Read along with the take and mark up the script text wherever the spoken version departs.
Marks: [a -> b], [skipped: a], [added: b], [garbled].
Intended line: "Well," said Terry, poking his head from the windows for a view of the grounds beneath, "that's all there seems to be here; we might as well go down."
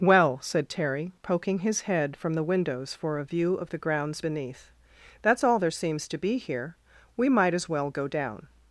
"Well," said Terry, poking his head from the windows for a view of the grounds beneath, "that's all there seems to be here; we might as well go down."